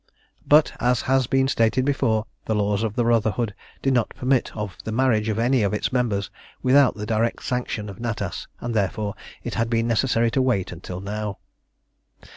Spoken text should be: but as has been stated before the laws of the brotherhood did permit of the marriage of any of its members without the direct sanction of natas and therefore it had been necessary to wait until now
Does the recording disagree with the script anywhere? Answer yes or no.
yes